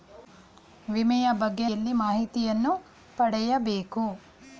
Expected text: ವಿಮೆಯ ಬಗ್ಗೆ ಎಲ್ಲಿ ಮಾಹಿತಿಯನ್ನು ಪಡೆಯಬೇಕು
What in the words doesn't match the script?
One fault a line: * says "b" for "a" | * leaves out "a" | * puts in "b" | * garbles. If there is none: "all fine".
all fine